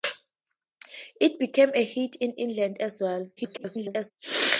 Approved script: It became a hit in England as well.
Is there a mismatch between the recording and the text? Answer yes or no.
yes